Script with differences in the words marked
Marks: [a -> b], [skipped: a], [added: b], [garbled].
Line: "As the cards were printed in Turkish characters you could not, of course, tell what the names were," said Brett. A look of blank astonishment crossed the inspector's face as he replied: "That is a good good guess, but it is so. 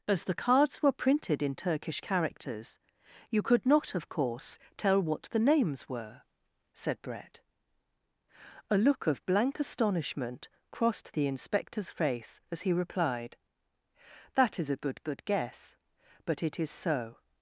"As the cards were printed in Turkish characters you could not, of course, tell what the names were," said Brett. A look of blank astonishment crossed the inspector's face as he replied: "That is a good good guess, but it is so.